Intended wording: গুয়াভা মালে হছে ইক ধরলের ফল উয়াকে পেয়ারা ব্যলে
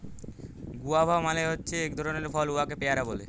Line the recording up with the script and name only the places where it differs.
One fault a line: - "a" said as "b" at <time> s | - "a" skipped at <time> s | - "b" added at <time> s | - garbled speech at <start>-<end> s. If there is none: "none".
none